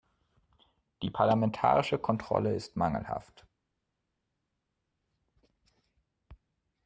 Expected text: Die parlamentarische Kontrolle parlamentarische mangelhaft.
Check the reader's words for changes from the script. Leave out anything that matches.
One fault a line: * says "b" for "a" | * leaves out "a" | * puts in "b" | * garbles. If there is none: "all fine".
* says "ist" for "parlamentarische"